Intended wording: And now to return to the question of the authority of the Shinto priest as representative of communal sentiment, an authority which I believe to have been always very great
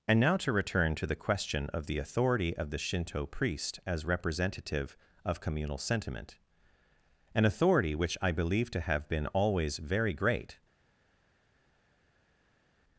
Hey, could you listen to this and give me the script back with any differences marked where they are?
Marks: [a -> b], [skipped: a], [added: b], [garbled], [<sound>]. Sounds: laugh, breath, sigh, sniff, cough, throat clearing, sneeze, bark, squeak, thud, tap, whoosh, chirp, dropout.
And now to return to the question of the authority of the Shinto priest as representative of communal sentiment, an authority which I believe to have been always very great